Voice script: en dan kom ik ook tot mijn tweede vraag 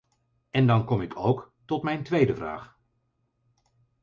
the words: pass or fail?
pass